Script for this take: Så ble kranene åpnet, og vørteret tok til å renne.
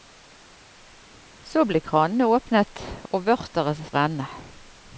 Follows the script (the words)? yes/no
no